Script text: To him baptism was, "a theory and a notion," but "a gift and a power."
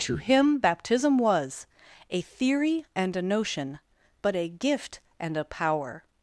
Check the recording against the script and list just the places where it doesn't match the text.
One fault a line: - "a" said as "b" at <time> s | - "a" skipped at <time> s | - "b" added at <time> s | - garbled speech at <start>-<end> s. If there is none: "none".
none